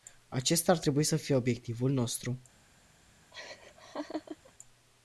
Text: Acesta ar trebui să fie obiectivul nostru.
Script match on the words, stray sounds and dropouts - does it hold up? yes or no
no